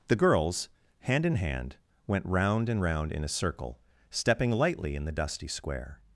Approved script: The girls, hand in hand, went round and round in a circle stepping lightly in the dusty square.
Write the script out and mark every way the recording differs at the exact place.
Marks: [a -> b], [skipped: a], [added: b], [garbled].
The girls, hand in hand, went round and round in a circle stepping lightly in the dusty square.